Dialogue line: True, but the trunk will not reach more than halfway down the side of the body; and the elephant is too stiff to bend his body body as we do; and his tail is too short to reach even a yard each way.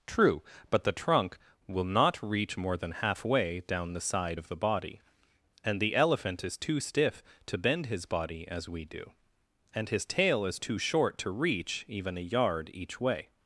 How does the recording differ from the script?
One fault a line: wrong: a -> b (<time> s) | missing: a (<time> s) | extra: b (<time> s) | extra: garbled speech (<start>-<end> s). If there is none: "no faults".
missing: body (8.5 s)